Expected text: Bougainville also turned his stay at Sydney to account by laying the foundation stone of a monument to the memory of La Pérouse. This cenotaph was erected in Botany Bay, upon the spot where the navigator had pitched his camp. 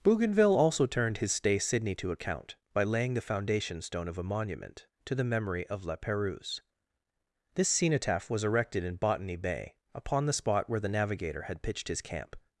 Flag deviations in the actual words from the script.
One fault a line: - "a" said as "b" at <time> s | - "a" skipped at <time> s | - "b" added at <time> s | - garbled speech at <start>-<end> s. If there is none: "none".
- "at" skipped at 1.6 s